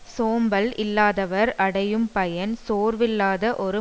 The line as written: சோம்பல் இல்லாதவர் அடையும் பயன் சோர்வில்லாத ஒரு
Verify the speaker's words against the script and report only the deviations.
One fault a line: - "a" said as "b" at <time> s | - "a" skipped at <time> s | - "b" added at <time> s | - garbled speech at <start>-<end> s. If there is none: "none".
none